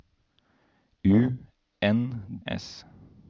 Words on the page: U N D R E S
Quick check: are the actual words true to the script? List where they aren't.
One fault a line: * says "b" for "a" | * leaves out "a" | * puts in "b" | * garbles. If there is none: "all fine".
* leaves out "D R E"